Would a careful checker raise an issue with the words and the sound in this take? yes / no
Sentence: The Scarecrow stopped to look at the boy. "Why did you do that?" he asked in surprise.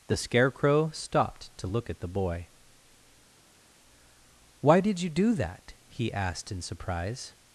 no